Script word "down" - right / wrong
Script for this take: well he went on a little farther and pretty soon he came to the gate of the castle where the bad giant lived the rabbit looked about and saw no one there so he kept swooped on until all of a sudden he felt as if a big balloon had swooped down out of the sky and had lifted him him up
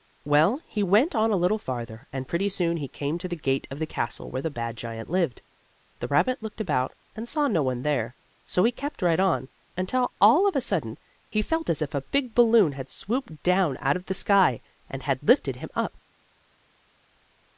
right